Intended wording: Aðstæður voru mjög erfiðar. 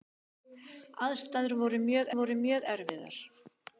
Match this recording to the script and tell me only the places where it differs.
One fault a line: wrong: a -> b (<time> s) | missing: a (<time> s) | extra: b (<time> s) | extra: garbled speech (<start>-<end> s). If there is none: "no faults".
extra: voru mjög (2.2 s)